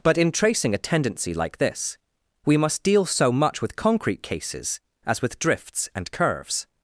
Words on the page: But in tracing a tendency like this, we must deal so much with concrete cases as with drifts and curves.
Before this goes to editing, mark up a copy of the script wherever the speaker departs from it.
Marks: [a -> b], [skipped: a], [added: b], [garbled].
But in tracing a tendency like this, we must deal so much with concrete cases as with drifts and curves.